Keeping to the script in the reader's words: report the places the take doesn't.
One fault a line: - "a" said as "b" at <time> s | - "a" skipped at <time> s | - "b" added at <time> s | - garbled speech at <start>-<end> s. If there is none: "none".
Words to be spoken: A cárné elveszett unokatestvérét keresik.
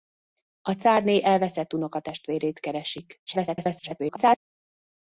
- garbled speech at 3.3-4.4 s